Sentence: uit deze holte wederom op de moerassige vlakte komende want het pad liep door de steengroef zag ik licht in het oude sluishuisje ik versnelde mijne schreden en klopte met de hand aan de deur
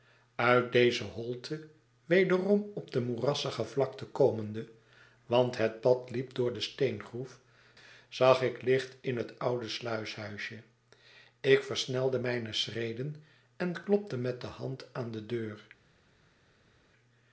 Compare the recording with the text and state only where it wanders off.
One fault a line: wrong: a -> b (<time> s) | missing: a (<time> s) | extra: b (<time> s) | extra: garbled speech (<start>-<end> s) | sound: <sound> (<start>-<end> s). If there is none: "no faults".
no faults